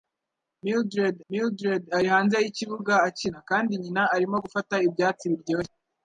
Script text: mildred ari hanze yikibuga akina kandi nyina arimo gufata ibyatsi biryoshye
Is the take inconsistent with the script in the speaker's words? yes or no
yes